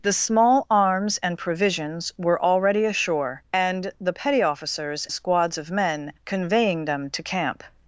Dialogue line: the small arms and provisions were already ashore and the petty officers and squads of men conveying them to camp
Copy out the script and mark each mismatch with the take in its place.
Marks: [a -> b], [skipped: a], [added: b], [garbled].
the small arms and provisions were already ashore and the petty officers [skipped: and] squads of men conveying them to camp